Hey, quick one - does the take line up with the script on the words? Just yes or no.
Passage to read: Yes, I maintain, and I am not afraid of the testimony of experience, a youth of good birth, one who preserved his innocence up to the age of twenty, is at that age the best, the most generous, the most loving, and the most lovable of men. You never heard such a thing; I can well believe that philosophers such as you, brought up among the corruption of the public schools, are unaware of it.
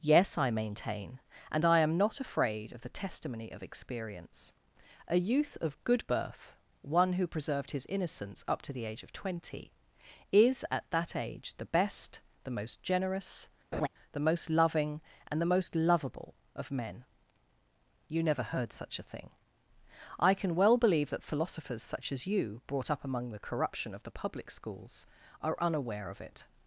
yes